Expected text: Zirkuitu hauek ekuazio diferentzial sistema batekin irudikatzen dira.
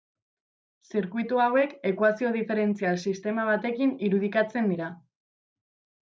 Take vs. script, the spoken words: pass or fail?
pass